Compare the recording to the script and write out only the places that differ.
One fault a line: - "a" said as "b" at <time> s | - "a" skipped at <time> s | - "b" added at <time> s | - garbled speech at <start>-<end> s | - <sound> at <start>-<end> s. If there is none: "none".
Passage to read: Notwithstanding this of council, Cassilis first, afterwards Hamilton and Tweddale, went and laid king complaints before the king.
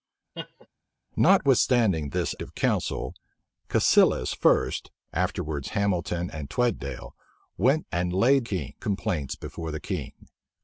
- laugh at 0.3-0.7 s